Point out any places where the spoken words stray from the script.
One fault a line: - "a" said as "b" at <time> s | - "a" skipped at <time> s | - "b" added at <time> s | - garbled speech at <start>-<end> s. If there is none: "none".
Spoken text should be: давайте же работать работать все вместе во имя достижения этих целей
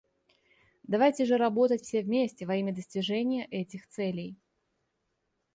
- "работать" skipped at 1.8 s